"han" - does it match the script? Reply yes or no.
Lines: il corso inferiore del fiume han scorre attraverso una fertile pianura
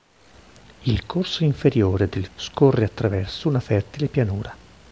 no